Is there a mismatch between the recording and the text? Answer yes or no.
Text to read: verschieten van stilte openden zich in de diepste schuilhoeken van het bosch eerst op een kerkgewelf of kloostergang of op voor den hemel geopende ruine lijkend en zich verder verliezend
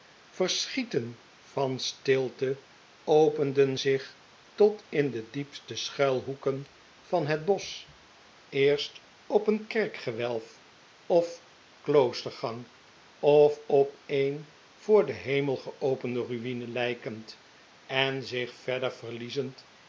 yes